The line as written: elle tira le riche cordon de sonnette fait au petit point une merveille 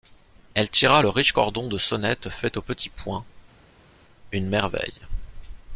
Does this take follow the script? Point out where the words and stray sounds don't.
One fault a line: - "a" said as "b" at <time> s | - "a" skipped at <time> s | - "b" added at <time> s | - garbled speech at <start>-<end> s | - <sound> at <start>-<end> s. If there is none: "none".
none